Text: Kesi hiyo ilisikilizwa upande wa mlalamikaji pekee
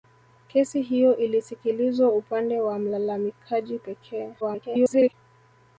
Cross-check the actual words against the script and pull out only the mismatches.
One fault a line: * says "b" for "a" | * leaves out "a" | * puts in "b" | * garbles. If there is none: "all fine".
* garbles